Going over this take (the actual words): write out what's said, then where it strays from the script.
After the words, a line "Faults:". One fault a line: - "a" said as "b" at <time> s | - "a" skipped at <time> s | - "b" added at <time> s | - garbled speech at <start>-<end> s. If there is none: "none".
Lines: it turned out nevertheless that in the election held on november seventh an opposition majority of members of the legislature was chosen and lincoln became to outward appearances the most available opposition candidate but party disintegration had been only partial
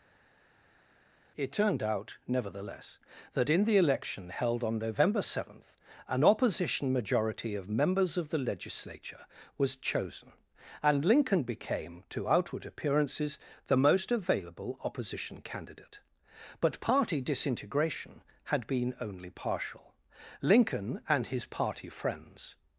it turned out nevertheless that in the election held on november seventh an opposition majority of members of the legislature was chosen and lincoln became to outward appearances the most available opposition candidate but party disintegration had been only partial lincoln and his party friends
Faults:
- "lincoln and his party friends" added at 20.4 s